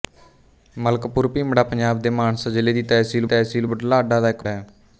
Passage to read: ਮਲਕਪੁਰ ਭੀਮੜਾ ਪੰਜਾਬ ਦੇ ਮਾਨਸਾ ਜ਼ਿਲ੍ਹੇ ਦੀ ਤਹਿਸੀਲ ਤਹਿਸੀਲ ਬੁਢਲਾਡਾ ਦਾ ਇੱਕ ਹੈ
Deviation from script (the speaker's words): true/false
false